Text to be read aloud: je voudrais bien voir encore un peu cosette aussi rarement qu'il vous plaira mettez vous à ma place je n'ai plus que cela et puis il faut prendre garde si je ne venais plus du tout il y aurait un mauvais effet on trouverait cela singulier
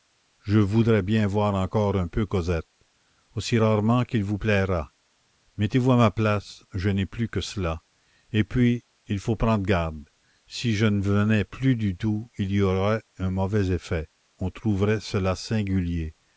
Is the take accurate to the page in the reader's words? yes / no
yes